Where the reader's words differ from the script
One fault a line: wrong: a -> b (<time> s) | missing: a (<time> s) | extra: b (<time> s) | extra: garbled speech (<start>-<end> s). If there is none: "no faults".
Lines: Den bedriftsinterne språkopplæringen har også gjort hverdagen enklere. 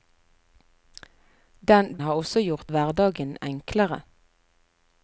missing: bedriftsinterne språkopplæringen (2.0 s)